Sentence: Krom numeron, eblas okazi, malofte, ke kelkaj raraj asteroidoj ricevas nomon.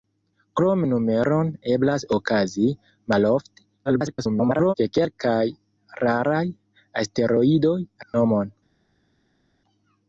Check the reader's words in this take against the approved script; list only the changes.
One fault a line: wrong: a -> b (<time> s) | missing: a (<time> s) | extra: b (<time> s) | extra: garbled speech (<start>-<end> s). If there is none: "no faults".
extra: garbled speech (3.9-4.7 s)
missing: ricevas (7.8 s)